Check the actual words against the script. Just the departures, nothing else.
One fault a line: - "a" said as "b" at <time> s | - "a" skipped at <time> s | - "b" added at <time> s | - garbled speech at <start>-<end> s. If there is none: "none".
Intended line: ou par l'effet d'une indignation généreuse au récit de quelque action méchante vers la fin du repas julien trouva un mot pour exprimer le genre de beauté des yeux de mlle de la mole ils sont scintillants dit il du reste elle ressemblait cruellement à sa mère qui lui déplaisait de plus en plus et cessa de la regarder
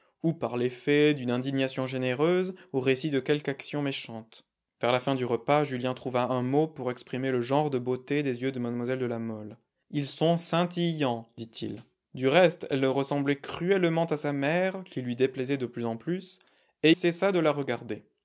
none